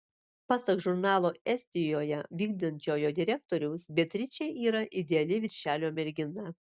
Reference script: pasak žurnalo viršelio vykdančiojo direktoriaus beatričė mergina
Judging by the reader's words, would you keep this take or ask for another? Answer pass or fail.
fail